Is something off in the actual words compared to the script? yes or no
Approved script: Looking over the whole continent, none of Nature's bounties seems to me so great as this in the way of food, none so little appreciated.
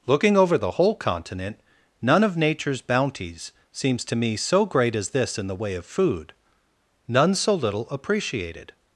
no